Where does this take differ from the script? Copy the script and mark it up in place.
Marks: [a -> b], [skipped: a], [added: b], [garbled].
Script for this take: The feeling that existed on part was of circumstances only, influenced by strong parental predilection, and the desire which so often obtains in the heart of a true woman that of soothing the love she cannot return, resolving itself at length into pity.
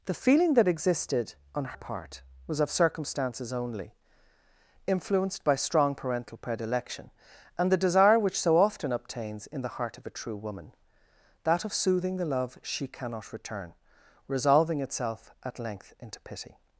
The feeling that existed on part was of circumstances only, influenced by strong parental predilection, and the desire which so often obtains in the heart of a true woman that of soothing the love she cannot return, resolving itself at length into pity.